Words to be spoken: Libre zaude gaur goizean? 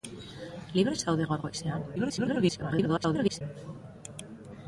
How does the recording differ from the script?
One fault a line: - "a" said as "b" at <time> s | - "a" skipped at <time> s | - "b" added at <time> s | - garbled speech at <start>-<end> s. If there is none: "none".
- garbled speech at 2.0-3.4 s